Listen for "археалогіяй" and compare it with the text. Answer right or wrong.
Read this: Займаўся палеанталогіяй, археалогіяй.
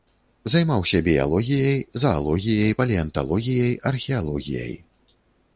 right